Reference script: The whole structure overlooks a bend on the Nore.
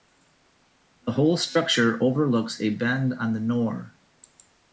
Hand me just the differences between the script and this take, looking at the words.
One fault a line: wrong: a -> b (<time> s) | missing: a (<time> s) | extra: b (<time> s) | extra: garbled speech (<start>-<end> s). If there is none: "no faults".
no faults